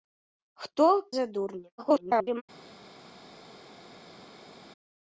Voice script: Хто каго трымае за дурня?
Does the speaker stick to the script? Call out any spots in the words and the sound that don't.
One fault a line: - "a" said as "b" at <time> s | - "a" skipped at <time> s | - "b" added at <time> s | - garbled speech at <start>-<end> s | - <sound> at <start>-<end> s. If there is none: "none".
- "каго трымае" skipped at 0.9 s
- garbled speech at 1.8-2.4 s